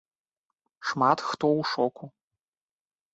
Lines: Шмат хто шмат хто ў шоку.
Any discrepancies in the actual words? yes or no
yes